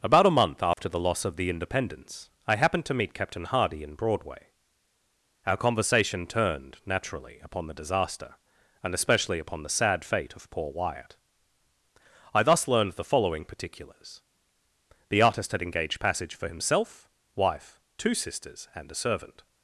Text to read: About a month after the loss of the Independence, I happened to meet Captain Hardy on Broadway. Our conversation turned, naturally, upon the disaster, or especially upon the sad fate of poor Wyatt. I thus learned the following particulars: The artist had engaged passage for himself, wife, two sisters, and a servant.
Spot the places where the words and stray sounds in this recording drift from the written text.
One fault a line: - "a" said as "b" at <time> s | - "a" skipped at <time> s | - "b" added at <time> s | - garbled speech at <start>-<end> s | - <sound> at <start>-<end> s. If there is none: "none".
- dropout at 0.7-0.8 s
- "on" said as "in" at 3.8 s
- "or" said as "and" at 8.8 s